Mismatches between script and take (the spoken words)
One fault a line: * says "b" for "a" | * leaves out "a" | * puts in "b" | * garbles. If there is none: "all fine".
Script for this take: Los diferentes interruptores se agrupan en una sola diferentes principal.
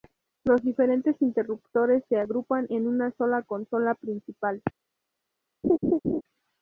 * says "consola" for "diferentes"